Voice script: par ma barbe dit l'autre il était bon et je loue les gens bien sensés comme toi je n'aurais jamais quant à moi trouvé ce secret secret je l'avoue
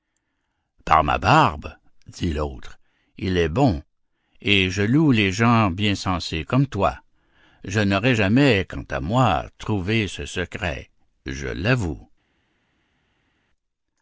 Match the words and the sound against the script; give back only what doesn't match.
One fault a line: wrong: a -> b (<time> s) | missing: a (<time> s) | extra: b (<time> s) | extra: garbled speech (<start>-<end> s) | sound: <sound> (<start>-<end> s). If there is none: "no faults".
wrong: était -> est (3.4 s)
missing: secret (10.9 s)